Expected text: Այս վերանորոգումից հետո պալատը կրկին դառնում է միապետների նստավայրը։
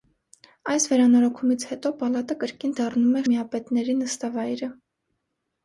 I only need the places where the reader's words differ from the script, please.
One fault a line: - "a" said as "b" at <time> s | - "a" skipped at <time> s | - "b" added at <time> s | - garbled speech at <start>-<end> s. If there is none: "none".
none